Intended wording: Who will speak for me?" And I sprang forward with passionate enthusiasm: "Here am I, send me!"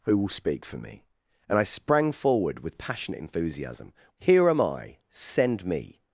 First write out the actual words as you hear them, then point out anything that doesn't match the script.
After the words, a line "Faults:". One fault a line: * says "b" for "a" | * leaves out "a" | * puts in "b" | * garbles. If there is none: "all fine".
Who will speak for me?" And I sprang forward with passionate enthusiasm: "Here am I, send me!"
Faults:
all fine